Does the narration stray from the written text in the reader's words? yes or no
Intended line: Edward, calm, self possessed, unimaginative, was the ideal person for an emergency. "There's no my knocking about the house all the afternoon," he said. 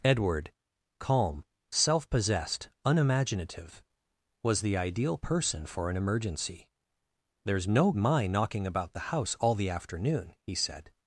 no